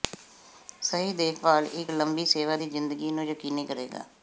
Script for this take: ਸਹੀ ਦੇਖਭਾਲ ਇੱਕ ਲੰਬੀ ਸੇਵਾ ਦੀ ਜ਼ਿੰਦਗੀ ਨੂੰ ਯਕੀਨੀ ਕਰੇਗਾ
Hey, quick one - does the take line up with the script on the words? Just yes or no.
yes